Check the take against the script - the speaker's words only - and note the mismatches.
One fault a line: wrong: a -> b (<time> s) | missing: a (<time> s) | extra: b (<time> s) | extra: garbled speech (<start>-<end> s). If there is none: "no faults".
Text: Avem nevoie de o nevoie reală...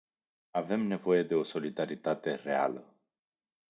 wrong: nevoie -> solidaritate (1.4 s)